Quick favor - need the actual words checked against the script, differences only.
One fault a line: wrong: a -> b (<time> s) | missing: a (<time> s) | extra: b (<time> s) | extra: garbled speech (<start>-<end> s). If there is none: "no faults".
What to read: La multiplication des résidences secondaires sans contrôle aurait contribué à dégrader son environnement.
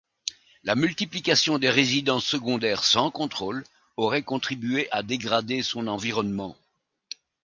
no faults